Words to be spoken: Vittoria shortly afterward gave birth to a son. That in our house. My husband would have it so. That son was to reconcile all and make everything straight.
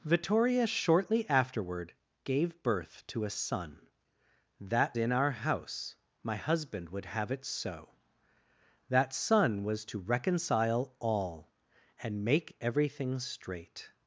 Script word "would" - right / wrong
right